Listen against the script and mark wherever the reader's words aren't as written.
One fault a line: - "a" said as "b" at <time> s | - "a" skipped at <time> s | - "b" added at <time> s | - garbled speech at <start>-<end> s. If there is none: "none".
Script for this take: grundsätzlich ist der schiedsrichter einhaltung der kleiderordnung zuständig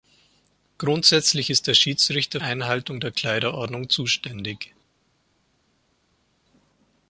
none